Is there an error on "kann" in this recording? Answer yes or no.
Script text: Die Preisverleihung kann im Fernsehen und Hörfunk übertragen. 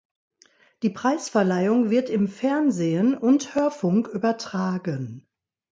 yes